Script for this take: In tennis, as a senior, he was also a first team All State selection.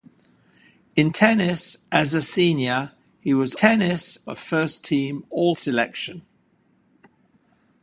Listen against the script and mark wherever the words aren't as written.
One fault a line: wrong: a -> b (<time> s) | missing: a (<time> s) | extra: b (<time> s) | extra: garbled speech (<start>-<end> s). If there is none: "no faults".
wrong: also -> tennis (3.5 s)
missing: State (5.6 s)